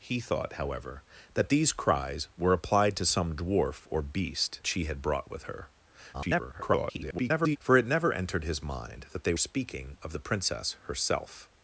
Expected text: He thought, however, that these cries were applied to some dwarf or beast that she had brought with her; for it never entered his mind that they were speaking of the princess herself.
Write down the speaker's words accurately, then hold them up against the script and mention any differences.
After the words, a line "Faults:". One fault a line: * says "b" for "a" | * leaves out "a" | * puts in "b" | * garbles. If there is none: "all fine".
He thought, however, that these cries were applied to some dwarf or beast she had brought with her; [garbled] for it never entered his mind that they speaking of the princess herself.
Faults:
* leaves out "that"
* garbles
* leaves out "were"